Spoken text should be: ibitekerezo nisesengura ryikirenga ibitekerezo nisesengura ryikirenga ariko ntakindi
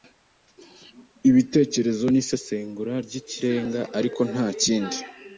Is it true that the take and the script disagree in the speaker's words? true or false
true